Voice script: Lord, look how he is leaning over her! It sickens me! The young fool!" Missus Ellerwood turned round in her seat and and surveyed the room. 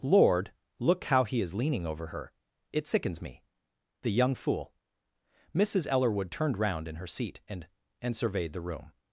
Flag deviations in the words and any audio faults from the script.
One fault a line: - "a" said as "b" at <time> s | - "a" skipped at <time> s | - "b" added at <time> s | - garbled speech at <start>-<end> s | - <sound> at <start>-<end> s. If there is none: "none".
none